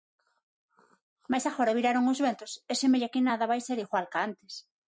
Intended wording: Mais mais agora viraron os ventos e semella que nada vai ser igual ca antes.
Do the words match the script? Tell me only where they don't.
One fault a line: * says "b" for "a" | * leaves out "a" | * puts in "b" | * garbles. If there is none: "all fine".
* leaves out "mais"